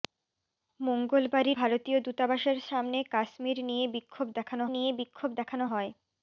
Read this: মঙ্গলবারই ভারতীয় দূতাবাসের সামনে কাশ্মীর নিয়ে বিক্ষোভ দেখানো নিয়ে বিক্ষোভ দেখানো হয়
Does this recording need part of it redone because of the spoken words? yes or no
no